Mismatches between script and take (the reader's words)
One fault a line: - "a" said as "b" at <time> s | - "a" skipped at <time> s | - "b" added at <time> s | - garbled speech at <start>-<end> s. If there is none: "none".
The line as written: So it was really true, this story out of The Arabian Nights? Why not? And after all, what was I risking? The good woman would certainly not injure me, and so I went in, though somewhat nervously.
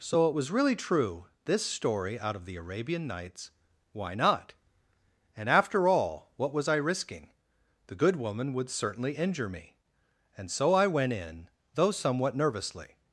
- "not" skipped at 9.2 s